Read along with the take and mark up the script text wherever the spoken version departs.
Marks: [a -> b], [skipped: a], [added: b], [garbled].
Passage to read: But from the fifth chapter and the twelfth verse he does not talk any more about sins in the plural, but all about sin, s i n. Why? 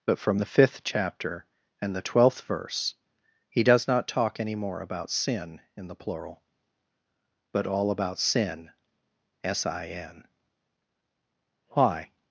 But from the fifth chapter and the twelfth verse he does not talk any more about [sins -> sin] in the plural, but all about sin, s i n. Why?